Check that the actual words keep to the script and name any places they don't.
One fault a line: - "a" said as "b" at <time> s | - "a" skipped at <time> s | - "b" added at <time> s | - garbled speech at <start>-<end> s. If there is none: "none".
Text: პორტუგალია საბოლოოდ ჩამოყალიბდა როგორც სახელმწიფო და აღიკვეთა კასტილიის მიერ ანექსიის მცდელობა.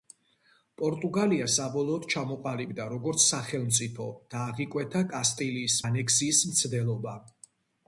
- "მიერ" skipped at 5.8 s